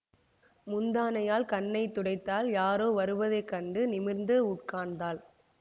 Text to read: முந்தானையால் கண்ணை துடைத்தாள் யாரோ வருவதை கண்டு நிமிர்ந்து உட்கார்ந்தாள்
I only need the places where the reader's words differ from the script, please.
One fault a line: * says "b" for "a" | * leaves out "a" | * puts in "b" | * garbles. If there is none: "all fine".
all fine